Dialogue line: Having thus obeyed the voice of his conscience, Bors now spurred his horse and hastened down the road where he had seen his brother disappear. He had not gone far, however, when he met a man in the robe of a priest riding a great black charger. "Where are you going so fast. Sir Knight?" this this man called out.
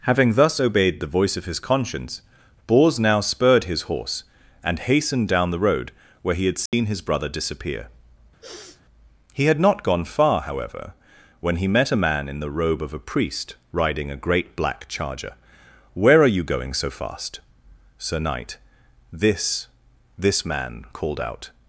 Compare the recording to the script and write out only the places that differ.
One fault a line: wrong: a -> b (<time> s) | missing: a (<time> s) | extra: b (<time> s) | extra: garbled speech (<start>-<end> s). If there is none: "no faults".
no faults